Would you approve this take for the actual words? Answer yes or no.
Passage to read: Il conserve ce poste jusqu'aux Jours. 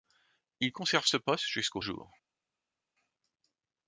yes